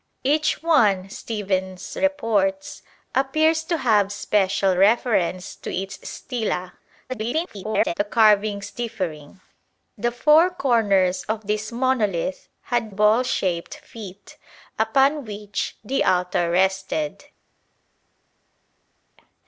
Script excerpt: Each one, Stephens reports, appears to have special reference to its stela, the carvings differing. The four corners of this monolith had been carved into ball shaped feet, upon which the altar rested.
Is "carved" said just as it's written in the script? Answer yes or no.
no